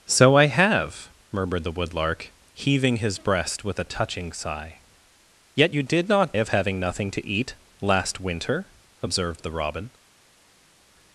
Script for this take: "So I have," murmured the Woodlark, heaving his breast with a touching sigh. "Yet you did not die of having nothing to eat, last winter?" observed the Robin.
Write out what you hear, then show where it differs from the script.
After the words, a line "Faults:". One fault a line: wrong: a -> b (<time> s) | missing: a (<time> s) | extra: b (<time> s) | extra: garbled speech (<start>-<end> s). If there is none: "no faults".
"So I have," murmured the Woodlark, heaving his breast with a touching sigh. "Yet you did not of having nothing to eat, last winter?" observed the Robin.
Faults:
missing: die (6.4 s)